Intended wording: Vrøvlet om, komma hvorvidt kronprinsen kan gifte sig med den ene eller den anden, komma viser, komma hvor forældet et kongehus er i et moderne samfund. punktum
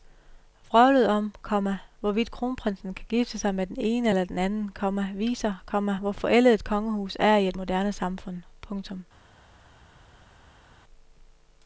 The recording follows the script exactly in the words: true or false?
true